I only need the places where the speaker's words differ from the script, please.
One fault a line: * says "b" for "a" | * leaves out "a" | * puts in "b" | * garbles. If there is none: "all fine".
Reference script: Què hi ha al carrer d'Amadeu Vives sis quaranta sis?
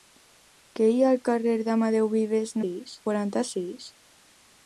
all fine